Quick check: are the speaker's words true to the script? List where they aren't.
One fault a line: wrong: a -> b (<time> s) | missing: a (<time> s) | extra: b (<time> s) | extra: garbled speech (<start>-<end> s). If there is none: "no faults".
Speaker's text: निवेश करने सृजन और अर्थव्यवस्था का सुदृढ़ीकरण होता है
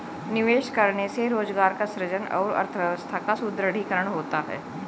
extra: से रोजगार का (1.1 s)